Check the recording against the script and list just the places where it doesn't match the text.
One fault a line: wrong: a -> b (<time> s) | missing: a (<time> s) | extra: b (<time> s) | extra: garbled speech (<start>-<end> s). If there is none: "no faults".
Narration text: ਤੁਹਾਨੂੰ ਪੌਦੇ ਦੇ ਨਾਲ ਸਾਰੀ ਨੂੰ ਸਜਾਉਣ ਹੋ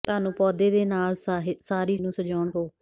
no faults